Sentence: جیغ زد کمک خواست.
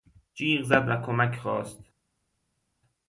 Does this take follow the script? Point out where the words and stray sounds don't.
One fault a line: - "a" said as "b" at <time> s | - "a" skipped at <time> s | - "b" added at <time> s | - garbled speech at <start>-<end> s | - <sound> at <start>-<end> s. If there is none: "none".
- "و" added at 0.9 s